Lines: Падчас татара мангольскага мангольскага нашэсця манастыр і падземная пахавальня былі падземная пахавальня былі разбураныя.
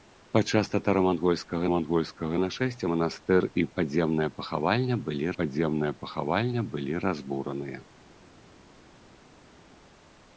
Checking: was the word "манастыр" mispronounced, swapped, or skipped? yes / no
no